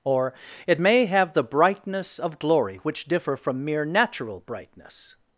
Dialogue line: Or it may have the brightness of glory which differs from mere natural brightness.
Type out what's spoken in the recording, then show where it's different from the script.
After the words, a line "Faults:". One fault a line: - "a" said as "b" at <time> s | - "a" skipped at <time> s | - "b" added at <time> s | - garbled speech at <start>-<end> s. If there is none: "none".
Or it may have the brightness of glory which differ from mere natural brightness.
Faults:
- "differs" said as "differ" at 3.0 s